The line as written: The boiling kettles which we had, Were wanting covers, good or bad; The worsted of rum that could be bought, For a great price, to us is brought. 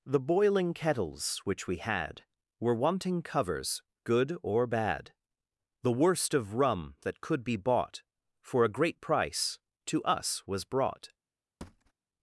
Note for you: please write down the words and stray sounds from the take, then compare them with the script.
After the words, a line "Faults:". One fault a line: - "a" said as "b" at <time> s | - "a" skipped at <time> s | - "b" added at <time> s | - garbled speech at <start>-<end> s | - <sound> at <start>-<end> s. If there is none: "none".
The boiling kettles which we had, Were wanting covers, good or bad; The worst of rum that could be bought, For a great price, to us was brought.
Faults:
- "worsted" said as "worst" at 5.9 s
- "is" said as "was" at 10.5 s
- thud at 11.6-11.9 s